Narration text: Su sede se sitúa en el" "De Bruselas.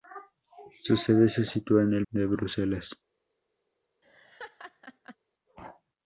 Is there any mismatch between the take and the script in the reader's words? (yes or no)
no